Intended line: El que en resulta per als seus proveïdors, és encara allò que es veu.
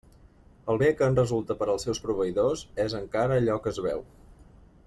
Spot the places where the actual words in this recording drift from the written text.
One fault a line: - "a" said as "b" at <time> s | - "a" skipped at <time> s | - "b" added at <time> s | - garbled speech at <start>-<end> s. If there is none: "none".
- "bé" added at 0.8 s